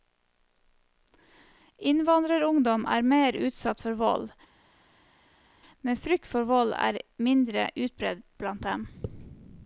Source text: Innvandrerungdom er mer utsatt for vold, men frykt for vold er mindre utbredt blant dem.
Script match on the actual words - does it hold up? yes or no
yes